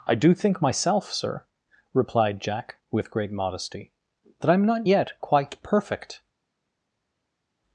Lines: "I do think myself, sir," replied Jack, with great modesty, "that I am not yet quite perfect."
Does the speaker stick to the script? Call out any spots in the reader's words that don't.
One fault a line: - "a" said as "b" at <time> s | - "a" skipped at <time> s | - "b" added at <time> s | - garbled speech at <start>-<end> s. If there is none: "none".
none